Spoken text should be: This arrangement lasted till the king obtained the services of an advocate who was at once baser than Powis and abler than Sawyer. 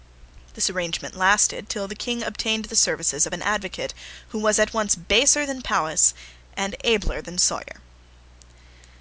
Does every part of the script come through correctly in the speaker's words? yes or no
yes